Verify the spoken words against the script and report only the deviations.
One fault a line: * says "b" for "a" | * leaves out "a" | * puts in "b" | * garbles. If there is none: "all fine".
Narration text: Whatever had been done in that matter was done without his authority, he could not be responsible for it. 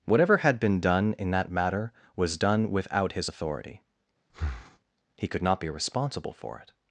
all fine